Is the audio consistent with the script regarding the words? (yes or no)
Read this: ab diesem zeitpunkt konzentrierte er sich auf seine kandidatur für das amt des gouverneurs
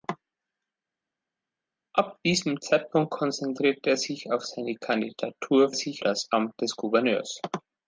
no